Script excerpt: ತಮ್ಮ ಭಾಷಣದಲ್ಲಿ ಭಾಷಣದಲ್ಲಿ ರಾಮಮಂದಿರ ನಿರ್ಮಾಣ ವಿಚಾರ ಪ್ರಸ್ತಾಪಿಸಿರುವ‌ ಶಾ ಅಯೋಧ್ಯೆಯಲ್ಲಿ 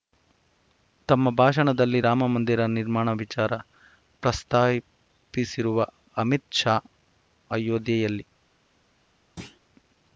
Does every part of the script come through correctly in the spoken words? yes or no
no